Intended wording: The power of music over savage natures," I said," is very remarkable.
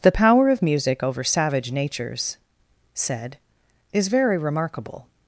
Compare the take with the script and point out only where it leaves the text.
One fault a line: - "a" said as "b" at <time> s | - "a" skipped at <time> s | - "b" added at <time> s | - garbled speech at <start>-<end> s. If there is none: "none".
- "I" skipped at 2.4 s